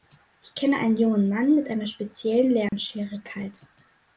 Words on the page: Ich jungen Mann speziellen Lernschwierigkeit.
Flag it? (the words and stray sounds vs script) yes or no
yes